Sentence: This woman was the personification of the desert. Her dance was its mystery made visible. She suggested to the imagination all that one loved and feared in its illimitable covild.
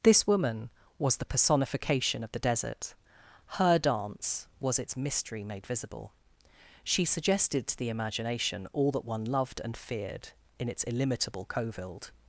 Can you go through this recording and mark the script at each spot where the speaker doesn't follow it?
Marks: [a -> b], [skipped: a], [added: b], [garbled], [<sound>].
This woman was the personification of the desert. Her dance was its mystery made visible. She suggested to the imagination all that one loved and feared in its illimitable covild.